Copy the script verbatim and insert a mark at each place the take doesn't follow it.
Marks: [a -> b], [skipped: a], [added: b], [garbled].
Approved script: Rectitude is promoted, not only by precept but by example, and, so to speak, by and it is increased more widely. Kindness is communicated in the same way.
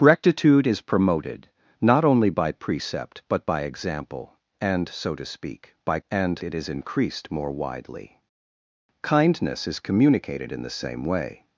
Rectitude is promoted, not only by precept but by example, and, so to speak, by and it is increased more widely. Kindness is communicated in the same way.